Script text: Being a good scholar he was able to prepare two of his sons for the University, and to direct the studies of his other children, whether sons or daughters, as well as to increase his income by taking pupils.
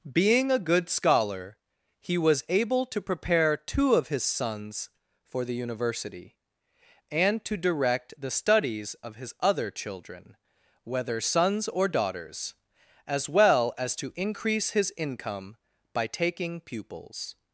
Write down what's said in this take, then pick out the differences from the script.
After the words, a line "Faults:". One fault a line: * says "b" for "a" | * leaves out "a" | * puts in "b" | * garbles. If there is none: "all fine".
Being a good scholar he was able to prepare two of his sons for the University, and to direct the studies of his other children, whether sons or daughters, as well as to increase his income by taking pupils.
Faults:
all fine